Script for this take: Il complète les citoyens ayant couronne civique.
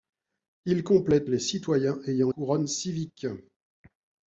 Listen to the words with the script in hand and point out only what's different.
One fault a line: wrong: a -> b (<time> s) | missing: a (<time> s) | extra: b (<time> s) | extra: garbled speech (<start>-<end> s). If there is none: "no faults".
no faults